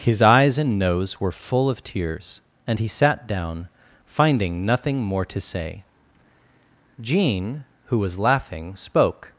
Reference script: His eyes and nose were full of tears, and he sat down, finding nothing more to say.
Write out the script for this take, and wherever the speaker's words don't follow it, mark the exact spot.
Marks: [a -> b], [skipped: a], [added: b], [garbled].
His eyes and nose were full of tears, and he sat down, finding nothing more to say. [added: Jean who was laughing spoke]